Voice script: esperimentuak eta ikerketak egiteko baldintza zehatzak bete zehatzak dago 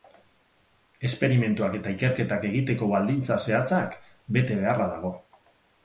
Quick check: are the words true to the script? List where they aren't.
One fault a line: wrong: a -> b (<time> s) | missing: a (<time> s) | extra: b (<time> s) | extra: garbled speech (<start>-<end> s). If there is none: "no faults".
wrong: zehatzak -> beharra (4.7 s)